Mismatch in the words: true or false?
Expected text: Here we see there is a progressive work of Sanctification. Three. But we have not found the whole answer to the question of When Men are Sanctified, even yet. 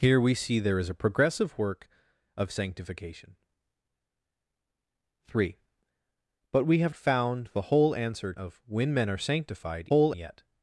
true